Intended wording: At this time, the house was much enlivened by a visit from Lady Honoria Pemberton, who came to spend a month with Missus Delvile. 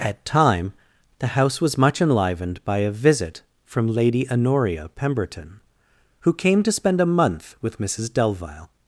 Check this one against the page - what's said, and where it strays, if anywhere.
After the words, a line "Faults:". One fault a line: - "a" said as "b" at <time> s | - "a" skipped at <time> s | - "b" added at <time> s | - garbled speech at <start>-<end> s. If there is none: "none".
At time, the house was much enlivened by a visit from Lady Honoria Pemberton, who came to spend a month with Missus Delvile.
Faults:
- "this" skipped at 0.2 s